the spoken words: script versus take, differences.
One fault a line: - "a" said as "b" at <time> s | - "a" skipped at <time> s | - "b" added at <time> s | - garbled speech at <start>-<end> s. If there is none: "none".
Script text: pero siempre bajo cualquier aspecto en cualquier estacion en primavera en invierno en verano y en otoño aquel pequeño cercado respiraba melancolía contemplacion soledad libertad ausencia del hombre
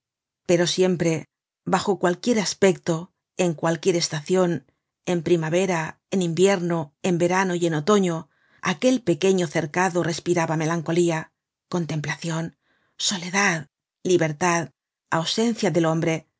none